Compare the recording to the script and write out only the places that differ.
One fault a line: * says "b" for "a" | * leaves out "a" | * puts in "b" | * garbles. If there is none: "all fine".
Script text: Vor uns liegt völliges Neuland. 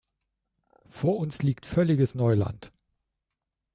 all fine